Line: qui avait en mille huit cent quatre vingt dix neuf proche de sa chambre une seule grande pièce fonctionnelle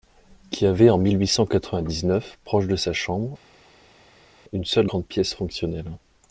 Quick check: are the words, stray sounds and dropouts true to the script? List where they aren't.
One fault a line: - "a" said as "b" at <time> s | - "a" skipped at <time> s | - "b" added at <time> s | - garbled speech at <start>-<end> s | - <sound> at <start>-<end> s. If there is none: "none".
none